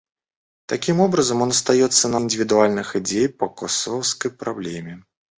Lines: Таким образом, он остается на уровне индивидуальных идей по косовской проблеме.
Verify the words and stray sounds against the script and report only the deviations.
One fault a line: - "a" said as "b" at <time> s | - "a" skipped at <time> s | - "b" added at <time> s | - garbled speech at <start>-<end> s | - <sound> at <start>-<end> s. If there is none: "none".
- "уровне" skipped at 2.2 s